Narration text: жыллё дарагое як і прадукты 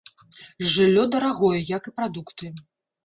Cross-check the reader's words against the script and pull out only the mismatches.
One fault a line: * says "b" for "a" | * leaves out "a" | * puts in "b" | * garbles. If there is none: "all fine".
all fine